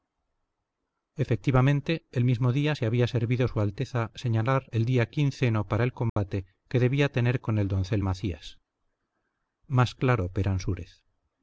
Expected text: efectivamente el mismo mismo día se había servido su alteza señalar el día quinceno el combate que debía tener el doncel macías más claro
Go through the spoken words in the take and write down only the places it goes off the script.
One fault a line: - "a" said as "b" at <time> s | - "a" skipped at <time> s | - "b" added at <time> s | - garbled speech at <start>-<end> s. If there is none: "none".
- "mismo" skipped at 2.5 s
- "para" added at 5.7 s
- "con" added at 7.4 s